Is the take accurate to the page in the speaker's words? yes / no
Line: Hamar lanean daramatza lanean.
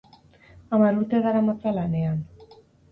no